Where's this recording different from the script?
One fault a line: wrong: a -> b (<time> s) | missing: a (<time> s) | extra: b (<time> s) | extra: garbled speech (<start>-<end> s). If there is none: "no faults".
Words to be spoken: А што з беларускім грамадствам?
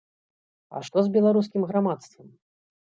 no faults